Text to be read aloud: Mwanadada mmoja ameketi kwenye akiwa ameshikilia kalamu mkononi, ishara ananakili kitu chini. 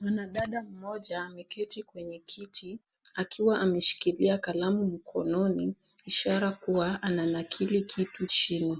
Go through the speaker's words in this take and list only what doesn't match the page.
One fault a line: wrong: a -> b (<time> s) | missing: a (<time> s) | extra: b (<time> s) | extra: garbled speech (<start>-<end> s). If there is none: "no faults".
extra: kiti (2.2 s)
extra: kuwa (6.5 s)